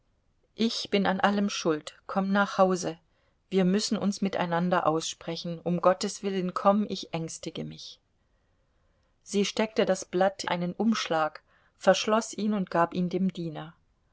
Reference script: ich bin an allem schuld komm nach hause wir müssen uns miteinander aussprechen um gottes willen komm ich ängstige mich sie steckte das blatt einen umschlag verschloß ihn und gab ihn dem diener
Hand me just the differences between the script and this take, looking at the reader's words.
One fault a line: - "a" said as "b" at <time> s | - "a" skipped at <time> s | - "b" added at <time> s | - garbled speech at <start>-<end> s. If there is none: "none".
none